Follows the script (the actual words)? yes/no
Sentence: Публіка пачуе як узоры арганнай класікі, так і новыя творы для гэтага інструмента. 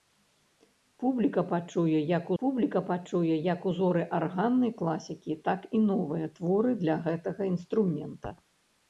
no